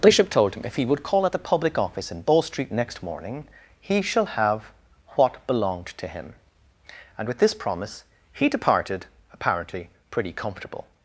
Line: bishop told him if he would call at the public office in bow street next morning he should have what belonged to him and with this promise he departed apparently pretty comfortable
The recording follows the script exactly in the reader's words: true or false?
false